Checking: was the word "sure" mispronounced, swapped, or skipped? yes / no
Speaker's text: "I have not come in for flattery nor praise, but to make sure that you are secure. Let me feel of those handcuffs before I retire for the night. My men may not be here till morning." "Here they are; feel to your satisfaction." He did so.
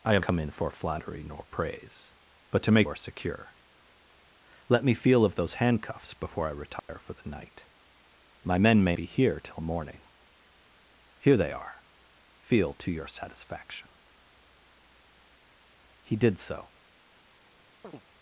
yes